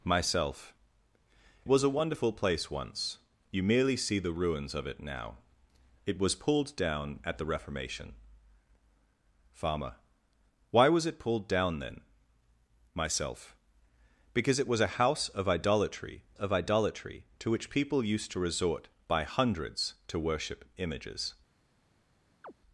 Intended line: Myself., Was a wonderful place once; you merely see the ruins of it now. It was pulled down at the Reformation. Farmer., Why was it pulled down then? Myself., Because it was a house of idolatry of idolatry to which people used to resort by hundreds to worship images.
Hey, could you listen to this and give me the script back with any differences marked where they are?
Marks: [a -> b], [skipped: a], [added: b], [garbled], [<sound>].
Myself., Was a wonderful place once; you merely see the ruins of it now. It was pulled down at the Reformation. Farmer., Why was it pulled down then? Myself., Because it was a house of idolatry of idolatry to which people used to resort by hundreds to worship images. [chirp]